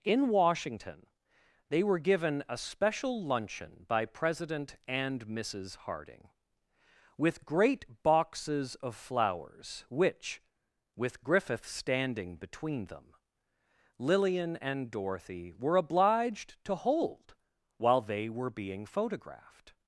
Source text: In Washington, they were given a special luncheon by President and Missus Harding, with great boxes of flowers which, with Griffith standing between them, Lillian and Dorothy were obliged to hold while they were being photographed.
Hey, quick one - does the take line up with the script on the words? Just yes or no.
yes